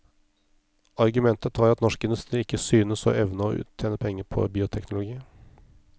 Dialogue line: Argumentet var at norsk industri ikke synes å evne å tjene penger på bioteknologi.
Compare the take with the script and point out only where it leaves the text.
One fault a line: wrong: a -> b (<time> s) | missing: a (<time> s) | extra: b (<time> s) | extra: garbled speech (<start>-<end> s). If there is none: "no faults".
no faults